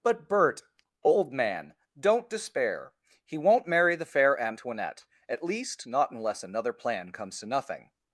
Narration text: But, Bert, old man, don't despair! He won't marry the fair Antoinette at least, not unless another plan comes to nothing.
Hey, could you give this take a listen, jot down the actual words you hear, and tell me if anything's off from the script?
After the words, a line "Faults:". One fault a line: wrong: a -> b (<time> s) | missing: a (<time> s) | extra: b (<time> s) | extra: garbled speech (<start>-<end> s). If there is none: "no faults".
But, Bert, old man, don't despair! He won't marry the fair Antoinette at least, not unless another plan comes to nothing.
Faults:
no faults